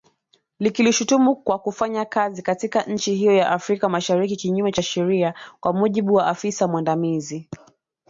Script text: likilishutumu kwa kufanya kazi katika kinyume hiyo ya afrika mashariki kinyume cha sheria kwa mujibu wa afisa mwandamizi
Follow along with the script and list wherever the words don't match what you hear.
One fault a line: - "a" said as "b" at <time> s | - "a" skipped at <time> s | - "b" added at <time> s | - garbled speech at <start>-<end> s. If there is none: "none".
- "kinyume" said as "nchi" at 2.8 s